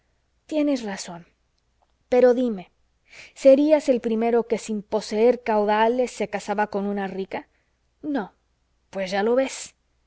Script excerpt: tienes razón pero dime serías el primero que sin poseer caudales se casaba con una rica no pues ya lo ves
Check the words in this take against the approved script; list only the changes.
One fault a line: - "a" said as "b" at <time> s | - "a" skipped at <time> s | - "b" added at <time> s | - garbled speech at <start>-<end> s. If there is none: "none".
none